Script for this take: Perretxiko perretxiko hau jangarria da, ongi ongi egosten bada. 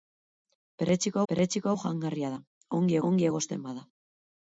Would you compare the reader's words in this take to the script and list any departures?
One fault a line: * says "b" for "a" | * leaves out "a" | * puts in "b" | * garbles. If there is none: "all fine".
all fine